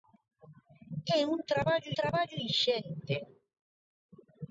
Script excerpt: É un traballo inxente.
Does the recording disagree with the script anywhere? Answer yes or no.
yes